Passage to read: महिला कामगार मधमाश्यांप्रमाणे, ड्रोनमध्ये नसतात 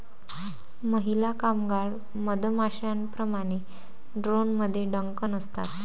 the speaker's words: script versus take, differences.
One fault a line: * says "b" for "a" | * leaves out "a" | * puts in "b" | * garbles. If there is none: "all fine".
* puts in "डंक"